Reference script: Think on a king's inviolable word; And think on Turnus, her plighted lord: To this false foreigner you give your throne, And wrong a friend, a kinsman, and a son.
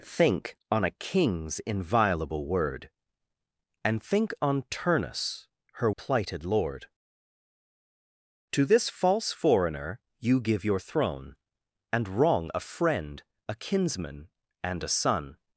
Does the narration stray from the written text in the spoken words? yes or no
no